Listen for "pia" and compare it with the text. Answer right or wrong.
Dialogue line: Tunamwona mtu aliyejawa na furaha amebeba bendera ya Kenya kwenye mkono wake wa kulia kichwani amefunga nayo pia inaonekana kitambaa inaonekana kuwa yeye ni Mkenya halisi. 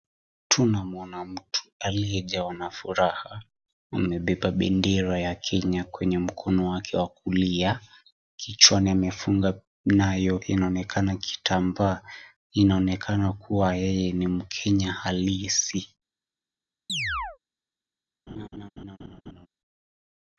wrong